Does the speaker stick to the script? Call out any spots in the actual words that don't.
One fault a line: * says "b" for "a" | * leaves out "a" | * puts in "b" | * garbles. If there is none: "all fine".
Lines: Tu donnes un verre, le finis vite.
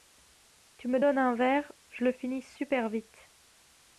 * puts in "me"
* puts in "je"
* puts in "super"